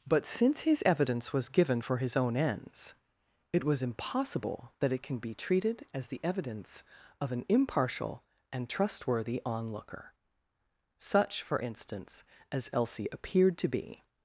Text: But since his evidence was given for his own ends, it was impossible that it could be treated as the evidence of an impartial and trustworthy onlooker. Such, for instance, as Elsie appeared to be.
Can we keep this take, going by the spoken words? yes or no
no